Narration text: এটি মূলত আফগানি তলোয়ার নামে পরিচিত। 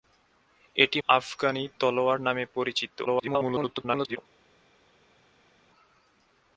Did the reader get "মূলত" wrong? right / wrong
wrong